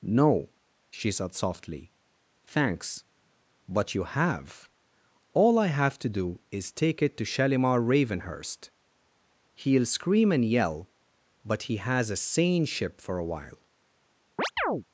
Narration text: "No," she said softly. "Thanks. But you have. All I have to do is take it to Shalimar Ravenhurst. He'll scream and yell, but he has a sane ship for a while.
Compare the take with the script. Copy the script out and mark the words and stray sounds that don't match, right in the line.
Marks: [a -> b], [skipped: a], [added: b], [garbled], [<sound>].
"No," she said softly. "Thanks. But you have. All I have to do is take it to Shalimar Ravenhurst. He'll scream and yell, but he has a sane ship for a while. [chirp]